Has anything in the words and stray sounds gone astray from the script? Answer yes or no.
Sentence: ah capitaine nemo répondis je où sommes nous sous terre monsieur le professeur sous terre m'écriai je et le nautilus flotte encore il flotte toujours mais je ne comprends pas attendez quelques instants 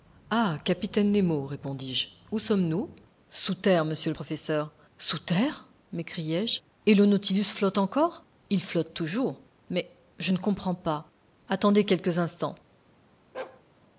yes